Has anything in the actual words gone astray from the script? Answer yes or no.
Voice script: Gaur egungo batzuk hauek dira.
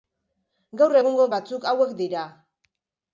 no